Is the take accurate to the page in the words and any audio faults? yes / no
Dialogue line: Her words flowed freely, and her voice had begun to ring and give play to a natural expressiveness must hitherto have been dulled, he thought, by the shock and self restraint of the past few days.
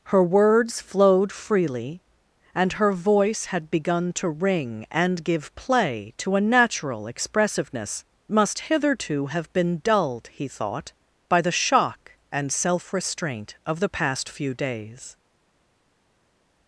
yes